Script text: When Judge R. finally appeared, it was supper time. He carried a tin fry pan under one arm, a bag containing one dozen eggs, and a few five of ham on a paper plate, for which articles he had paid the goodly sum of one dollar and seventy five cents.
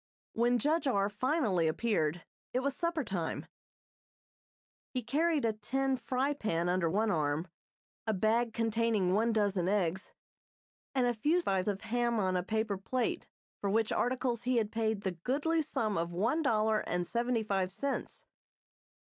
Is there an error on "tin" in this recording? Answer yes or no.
no